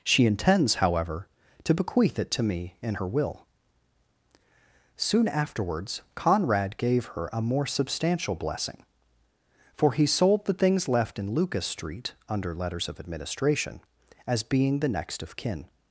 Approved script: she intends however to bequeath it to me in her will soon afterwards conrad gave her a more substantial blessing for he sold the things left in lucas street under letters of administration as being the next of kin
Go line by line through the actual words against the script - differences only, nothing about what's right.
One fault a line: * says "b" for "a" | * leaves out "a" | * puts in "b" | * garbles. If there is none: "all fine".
all fine